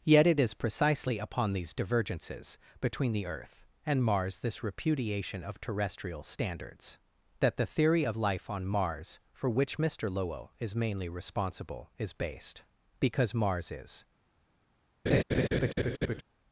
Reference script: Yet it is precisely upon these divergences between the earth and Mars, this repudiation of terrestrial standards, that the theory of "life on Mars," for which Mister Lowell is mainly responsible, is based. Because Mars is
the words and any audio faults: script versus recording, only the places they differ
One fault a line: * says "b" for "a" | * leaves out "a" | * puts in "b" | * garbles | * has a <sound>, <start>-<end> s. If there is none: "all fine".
* has a laugh, 15.1-16.2 s